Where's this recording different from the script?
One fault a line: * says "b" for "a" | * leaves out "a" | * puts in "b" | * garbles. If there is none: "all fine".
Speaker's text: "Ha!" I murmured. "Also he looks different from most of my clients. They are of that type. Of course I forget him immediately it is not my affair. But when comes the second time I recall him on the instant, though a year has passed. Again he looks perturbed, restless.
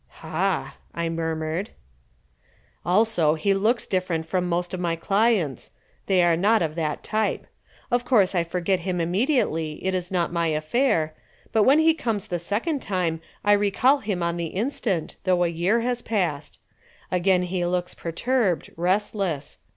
* puts in "not"
* puts in "he"